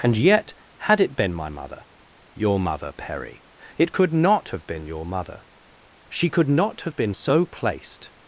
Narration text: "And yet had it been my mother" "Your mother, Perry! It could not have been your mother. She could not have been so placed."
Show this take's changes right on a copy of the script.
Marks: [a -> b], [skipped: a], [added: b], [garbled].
"And yet had it been my mother" "Your mother, Perry! It could not have been your mother. She could not have been so placed."